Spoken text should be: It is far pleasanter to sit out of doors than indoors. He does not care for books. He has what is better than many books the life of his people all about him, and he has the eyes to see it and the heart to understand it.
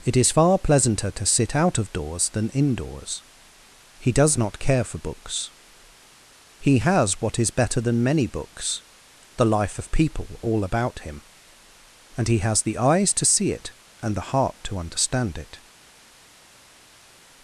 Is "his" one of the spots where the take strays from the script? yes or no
yes